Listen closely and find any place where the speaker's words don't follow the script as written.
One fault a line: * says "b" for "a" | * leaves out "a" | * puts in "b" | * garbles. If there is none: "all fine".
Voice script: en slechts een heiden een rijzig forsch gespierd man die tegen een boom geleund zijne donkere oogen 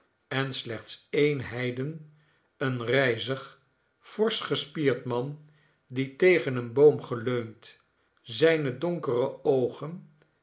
all fine